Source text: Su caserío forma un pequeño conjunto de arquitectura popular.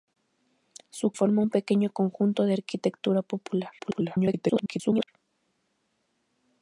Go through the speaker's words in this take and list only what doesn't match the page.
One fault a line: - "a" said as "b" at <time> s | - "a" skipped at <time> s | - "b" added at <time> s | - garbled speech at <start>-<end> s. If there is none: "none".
- "caserío" skipped at 1.1 s
- garbled speech at 3.8-5.1 s